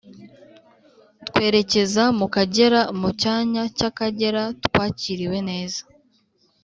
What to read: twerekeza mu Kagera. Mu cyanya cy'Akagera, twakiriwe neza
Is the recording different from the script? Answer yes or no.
no